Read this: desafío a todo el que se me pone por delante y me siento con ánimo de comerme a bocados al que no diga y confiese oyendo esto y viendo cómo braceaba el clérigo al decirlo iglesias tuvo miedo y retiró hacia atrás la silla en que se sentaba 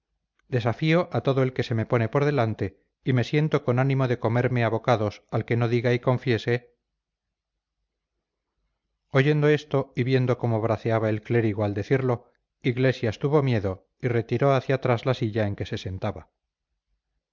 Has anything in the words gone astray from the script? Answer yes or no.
no